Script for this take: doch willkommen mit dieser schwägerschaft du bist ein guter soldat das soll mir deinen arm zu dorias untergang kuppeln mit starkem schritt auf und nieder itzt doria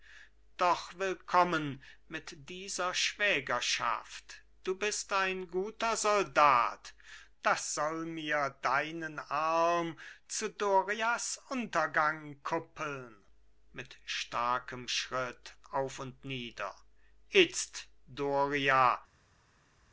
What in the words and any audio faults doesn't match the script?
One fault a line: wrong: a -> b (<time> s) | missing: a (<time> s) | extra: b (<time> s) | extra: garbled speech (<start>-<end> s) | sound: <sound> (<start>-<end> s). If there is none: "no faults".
no faults